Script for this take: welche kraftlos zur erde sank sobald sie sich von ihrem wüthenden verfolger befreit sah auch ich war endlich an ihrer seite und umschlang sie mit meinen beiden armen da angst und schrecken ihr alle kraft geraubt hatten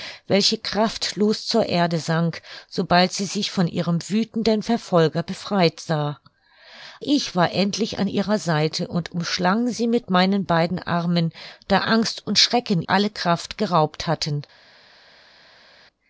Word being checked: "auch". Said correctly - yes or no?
no